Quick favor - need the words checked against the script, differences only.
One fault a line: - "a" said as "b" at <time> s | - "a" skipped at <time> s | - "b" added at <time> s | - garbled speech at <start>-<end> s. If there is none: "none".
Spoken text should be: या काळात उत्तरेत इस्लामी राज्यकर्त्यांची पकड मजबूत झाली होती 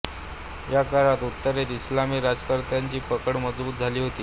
none